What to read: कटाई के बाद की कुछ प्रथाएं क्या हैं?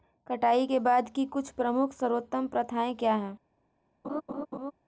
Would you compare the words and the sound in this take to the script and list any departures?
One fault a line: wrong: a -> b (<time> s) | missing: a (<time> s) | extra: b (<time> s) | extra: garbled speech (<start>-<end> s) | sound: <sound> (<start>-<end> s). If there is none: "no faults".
extra: प्रमुख सर्वोत्तम (1.5 s)
sound: laugh (4.0-4.7 s)